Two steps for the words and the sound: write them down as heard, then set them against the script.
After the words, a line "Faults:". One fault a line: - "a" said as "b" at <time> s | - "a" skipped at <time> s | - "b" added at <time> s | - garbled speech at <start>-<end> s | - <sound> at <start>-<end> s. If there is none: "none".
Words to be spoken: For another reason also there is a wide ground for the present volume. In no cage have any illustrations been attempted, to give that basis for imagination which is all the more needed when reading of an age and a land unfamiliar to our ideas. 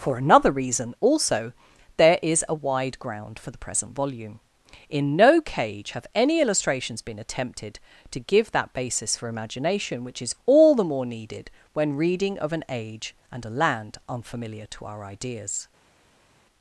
For another reason also there is a wide ground for the present volume. In no cage have any illustrations been attempted, to give that basis for imagination which is all the more needed when reading of an age and a land unfamiliar to our ideas.
Faults:
none